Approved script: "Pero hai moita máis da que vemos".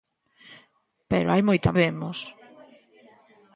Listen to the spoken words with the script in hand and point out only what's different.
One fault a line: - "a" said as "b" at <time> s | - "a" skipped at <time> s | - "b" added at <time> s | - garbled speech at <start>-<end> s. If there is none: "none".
- "máis da que" skipped at 1.8 s